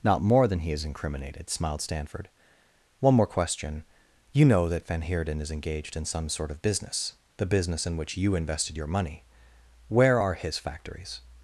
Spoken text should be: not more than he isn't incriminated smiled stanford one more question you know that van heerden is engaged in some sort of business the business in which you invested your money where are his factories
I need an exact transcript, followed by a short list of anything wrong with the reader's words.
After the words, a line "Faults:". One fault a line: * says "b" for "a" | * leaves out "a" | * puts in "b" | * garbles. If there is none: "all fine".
not more than he is incriminated smiled stanford one more question you know that van heerden is engaged in some sort of business the business in which you invested your money where are his factories
Faults:
* says "is" for "isn't"